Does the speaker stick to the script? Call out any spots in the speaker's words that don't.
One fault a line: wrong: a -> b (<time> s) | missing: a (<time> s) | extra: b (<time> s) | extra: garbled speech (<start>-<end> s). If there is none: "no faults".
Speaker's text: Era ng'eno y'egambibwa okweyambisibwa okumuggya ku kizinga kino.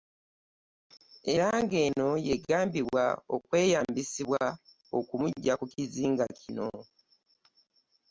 no faults